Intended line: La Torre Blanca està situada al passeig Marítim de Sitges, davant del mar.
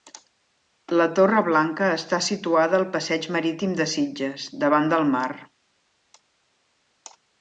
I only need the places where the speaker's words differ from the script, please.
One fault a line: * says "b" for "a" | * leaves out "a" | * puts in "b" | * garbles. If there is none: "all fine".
all fine